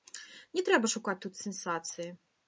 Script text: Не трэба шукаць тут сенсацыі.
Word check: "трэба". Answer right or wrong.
right